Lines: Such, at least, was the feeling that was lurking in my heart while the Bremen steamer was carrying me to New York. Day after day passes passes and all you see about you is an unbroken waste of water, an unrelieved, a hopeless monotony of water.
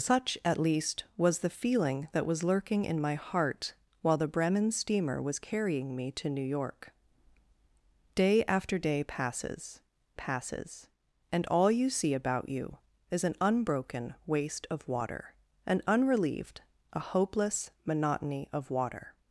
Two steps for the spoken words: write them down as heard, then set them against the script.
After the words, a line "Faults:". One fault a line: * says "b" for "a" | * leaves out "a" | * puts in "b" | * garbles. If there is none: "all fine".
Such, at least, was the feeling that was lurking in my heart while the Bremen steamer was carrying me to New York. Day after day passes passes and all you see about you is an unbroken waste of water, an unrelieved, a hopeless monotony of water.
Faults:
all fine